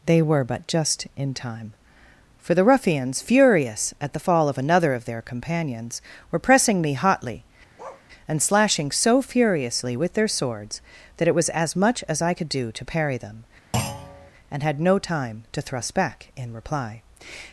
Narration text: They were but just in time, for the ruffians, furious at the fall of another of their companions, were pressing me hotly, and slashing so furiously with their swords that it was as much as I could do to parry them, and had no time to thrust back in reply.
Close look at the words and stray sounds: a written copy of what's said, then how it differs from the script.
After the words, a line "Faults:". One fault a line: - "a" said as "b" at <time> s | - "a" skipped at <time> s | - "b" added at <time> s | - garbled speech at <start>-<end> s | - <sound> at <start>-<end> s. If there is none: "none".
They were but just in time, for the ruffians, furious at the fall of another of their companions, were pressing me hotly, and slashing so furiously with their swords that it was as much as I could do to parry them, and had no time to thrust back in reply.
Faults:
- bark at 7.8-8.1 s
- thud at 13.7-14.3 s